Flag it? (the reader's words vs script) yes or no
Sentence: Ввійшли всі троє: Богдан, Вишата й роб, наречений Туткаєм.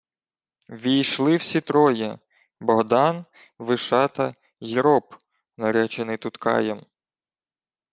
no